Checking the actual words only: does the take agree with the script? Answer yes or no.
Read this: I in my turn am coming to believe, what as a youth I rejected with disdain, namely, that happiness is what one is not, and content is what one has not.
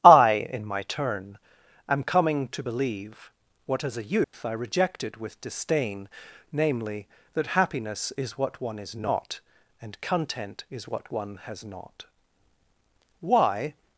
no